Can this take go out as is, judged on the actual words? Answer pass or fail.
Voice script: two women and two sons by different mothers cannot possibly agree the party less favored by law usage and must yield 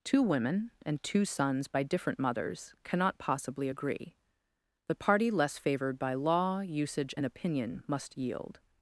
fail